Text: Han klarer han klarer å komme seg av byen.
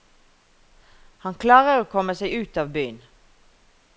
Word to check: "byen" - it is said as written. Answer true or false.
true